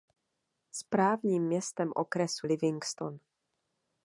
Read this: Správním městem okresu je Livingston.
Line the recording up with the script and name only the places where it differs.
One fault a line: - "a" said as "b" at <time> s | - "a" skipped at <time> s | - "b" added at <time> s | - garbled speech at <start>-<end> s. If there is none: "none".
- "je" skipped at 2.5 s